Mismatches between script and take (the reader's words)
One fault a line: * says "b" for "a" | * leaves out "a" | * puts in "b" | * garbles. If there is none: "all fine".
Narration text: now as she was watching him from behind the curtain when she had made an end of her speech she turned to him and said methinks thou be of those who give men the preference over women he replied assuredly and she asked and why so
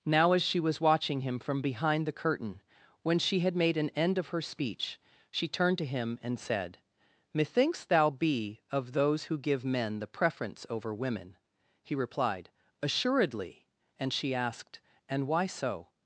all fine